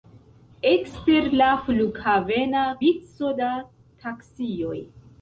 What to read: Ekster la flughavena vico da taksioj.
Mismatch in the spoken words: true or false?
false